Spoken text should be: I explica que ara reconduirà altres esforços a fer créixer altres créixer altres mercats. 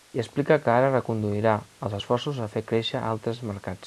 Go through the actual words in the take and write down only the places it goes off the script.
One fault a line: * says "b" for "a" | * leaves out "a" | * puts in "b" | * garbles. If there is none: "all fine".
* says "els" for "altres"
* leaves out "créixer altres"